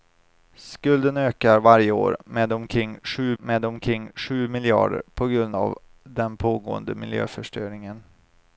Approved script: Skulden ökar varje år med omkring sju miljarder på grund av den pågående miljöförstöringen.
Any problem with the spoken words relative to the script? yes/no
yes